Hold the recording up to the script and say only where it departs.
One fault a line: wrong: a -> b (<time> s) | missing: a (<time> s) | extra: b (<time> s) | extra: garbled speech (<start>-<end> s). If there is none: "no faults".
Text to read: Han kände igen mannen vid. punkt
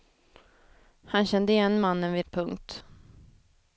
no faults